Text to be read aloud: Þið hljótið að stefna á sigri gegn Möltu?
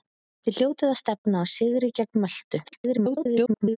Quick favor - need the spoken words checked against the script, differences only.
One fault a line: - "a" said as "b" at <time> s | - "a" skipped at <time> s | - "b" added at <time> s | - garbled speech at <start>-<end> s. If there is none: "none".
- garbled speech at 2.6-3.8 s